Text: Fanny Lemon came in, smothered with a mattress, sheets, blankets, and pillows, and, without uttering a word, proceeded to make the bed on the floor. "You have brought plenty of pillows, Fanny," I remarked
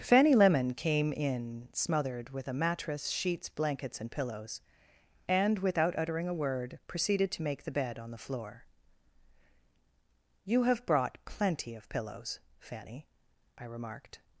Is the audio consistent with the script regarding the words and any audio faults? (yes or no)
yes